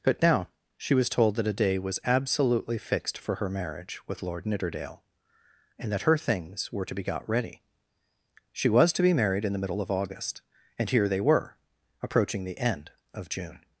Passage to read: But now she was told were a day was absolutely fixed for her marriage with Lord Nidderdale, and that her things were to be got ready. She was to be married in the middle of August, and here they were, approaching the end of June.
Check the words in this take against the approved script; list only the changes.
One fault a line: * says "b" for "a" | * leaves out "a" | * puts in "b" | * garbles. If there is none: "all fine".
* says "that" for "were"